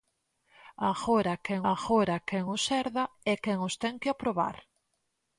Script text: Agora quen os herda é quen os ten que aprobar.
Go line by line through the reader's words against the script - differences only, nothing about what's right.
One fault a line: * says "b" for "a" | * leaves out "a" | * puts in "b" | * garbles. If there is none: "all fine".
* puts in "agora quen"